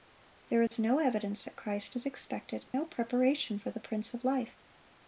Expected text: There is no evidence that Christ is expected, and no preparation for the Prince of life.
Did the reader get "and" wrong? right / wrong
wrong